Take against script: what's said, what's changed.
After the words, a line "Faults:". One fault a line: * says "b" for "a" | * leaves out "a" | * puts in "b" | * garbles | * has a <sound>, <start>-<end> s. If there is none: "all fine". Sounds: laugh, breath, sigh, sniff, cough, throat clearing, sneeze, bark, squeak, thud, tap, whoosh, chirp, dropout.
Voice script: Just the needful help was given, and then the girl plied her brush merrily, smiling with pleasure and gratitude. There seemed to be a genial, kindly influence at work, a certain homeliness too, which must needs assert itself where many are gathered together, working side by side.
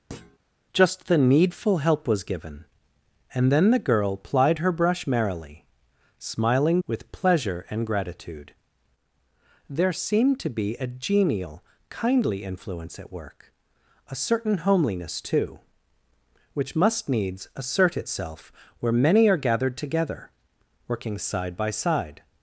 Just the needful help was given, and then the girl plied her brush merrily, smiling with pleasure and gratitude. There seemed to be a genial, kindly influence at work, a certain homeliness too, which must needs assert itself where many are gathered together, working side by side.
Faults:
* has a thud, 0.1-0.4 s